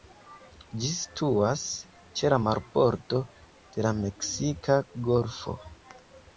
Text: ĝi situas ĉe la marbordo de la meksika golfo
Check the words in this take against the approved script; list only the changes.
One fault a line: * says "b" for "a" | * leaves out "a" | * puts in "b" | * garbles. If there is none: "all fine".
all fine